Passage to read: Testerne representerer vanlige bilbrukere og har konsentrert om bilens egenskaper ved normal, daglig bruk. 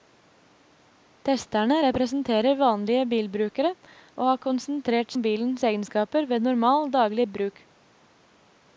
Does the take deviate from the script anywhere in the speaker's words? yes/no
no